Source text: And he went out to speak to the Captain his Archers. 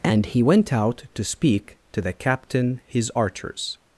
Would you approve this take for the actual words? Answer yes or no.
yes